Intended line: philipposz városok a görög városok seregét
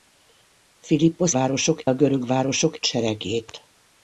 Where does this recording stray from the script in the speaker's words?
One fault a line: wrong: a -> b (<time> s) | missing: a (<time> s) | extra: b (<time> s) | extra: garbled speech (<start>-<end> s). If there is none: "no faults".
no faults